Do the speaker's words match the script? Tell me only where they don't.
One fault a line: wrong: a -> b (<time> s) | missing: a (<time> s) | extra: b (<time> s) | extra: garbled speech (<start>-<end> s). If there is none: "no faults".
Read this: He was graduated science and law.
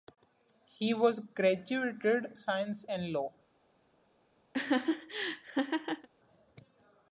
no faults